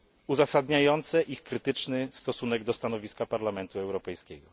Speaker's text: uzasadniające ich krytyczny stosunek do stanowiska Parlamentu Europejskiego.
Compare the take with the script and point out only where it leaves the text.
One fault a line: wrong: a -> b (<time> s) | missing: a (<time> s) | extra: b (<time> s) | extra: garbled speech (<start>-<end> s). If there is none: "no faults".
no faults